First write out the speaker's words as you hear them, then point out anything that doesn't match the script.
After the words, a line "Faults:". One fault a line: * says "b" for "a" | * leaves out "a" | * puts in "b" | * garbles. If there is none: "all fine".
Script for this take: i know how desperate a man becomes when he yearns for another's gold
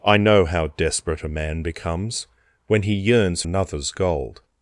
i know how desperate a man becomes when he yearns another's gold
Faults:
* leaves out "for"